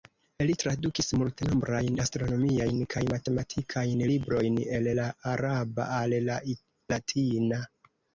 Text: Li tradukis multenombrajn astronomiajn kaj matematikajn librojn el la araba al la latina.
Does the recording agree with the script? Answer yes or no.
yes